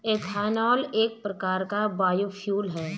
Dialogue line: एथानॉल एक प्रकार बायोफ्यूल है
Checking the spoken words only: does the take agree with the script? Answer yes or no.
no